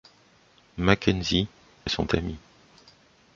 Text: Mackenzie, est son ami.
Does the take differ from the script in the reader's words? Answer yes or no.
no